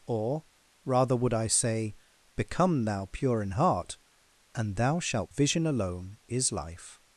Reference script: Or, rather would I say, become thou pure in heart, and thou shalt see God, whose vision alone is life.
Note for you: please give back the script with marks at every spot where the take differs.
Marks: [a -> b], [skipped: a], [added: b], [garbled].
Or, rather would I say, become thou pure in heart, and thou shalt [skipped: see God, whose] vision alone is life.